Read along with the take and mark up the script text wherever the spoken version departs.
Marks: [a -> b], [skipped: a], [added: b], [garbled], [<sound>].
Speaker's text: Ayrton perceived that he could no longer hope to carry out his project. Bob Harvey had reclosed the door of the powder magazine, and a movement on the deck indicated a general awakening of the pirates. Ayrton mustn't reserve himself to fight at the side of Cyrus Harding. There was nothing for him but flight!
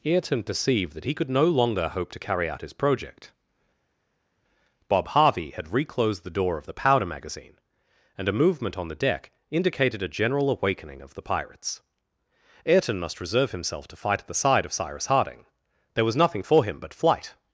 Ayrton perceived that he could no longer hope to carry out his project. Bob Harvey had reclosed the door of the powder magazine, and a movement on the deck indicated a general awakening of the pirates. Ayrton [mustn't -> must] reserve himself to fight at the side of Cyrus Harding. There was nothing for him but flight!